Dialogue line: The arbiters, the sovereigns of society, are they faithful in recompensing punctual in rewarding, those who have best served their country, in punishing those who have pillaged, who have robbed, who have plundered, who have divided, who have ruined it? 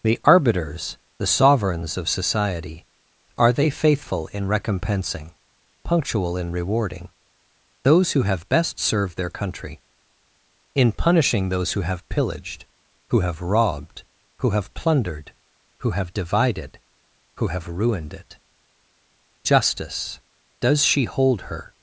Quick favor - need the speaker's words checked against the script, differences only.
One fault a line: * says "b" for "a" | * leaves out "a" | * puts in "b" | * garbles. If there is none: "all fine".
* puts in "Justice does she hold her"